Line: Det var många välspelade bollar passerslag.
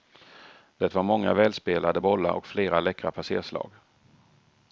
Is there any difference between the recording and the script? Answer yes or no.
yes